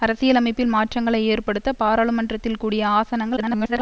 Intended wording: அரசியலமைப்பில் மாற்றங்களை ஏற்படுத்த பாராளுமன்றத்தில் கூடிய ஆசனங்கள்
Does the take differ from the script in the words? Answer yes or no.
yes